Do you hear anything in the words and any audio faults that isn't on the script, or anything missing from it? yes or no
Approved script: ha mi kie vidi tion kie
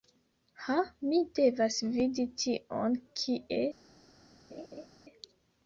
yes